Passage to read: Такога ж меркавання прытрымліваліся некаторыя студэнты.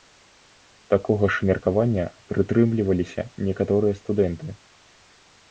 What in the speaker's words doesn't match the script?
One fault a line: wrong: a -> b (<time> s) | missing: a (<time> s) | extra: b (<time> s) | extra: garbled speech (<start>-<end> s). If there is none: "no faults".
no faults